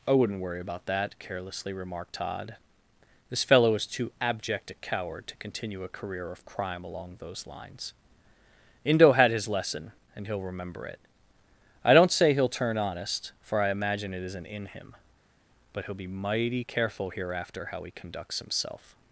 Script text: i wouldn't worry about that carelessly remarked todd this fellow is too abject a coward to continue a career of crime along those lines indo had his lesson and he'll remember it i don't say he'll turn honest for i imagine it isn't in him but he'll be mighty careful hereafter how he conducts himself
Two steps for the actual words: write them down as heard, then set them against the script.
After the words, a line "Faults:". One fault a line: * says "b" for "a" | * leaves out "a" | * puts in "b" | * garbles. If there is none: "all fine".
i wouldn't worry about that carelessly remarked todd this fellow is too abject a coward to continue a career of crime along those lines indo had his lesson and he'll remember it i don't say he'll turn honest for i imagine it isn't in him but he'll be mighty careful hereafter how he conducts himself
Faults:
all fine